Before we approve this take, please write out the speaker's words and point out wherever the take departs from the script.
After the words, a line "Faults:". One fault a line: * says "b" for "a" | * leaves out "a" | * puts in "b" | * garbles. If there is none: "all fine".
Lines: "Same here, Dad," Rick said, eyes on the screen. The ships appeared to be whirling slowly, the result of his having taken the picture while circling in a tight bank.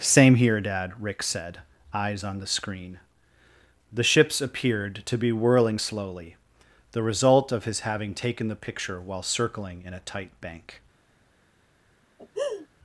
"Same here, Dad," Rick said, eyes on the screen. The ships appeared to be whirling slowly, the result of his having taken the picture while circling in a tight bank.
Faults:
all fine